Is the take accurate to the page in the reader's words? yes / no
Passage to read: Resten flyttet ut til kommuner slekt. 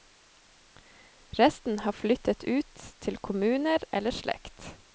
no